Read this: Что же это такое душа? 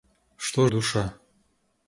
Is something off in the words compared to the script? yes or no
yes